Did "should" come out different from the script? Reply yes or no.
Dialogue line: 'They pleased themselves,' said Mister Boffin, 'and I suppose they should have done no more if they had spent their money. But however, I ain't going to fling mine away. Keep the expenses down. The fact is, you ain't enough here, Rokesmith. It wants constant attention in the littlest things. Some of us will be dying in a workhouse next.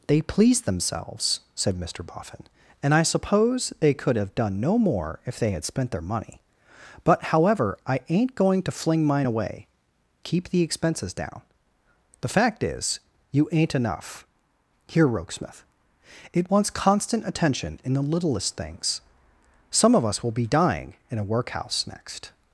yes